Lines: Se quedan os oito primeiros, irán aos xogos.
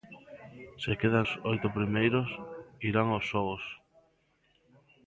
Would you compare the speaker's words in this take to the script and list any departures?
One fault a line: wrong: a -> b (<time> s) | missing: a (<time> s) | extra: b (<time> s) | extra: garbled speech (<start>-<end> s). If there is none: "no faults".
no faults